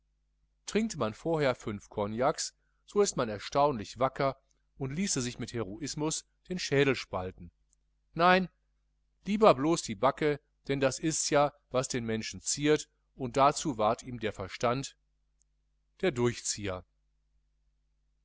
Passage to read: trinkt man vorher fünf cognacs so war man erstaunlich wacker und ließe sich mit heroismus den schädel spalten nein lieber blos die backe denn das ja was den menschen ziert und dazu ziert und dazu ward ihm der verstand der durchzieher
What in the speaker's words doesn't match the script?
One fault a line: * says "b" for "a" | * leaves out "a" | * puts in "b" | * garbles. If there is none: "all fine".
* says "ist" for "war"
* puts in "ists"
* leaves out "ziert und dazu"